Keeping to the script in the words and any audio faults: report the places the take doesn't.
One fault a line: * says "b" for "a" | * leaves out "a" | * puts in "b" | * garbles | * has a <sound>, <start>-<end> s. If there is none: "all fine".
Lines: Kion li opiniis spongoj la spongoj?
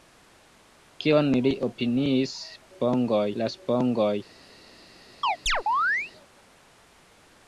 * has a chirp, 5.2-6.1 s